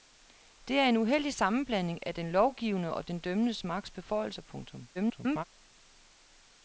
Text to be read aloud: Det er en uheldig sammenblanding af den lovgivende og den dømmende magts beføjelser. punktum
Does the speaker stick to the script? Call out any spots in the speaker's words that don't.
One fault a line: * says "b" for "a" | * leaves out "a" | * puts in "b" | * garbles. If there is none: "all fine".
* garbles